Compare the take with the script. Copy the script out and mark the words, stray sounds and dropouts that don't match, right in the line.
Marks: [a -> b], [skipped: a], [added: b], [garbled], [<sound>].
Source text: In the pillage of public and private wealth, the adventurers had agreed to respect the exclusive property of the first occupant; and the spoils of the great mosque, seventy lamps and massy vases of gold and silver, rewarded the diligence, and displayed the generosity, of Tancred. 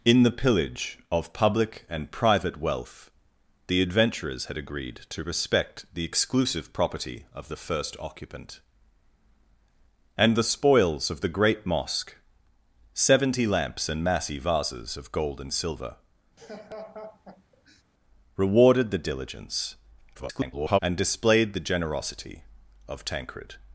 In the pillage of public and private wealth, the adventurers had agreed to respect the exclusive property of the first occupant; and the spoils of the great mosque, seventy lamps and massy vases of gold and silver, [laugh] rewarded the diligence, [garbled] and displayed the generosity, of Tancred.